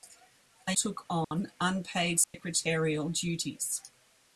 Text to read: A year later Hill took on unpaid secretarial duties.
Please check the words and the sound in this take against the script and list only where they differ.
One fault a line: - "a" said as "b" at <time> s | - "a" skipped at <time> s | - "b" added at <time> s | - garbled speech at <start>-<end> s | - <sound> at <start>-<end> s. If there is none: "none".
- "year later Hill" skipped at 0.7 s
- dropout at 1.2-1.3 s
- dropout at 2.2-2.3 s